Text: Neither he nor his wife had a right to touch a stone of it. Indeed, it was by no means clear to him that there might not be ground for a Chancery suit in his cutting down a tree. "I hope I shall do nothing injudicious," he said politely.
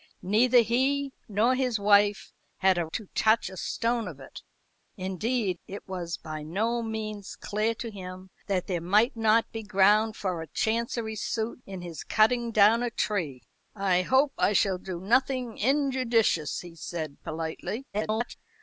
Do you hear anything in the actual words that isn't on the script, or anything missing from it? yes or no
yes